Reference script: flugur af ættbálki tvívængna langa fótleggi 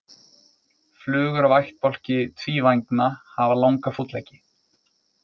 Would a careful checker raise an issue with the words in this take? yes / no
yes